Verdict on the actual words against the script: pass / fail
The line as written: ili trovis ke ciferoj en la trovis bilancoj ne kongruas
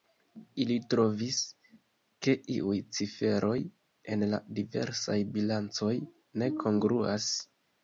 fail